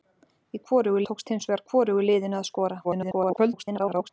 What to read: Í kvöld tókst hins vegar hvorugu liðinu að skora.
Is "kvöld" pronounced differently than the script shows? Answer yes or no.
yes